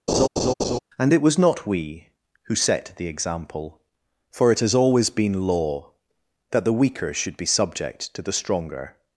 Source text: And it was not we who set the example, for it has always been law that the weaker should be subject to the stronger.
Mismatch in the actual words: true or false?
false